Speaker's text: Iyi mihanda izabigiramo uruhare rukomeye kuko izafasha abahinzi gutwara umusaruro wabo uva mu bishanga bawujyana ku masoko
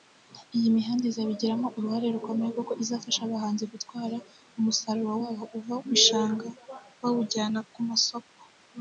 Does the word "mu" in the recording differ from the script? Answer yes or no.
yes